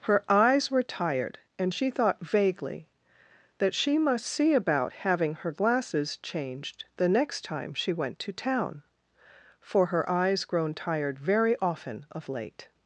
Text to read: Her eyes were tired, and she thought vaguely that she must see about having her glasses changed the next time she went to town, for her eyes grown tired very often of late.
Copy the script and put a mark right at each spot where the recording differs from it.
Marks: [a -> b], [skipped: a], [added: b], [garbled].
Her eyes were tired, and she thought vaguely that she must see about having her glasses changed the next time she went to town, for her eyes grown tired very often of late.